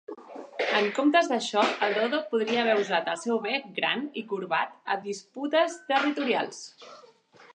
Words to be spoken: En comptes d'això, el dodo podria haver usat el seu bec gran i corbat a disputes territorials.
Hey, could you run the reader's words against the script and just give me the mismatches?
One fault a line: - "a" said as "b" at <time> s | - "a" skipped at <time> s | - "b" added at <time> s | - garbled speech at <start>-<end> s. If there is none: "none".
none